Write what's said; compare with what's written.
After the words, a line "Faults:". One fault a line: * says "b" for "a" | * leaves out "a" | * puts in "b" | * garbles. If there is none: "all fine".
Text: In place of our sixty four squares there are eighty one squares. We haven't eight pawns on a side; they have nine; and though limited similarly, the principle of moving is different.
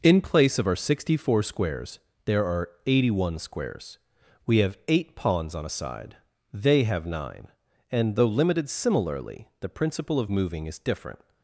In place of our sixty four squares there are eighty one squares. We have eight pawns on a side; they have nine; and though limited similarly, the principle of moving is different.
Faults:
* says "have" for "haven't"